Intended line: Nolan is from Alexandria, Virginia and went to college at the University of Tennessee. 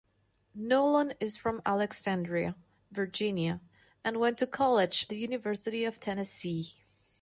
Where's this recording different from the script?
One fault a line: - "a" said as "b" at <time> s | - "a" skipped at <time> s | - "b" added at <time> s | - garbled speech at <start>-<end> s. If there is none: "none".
- "at" skipped at 5.0 s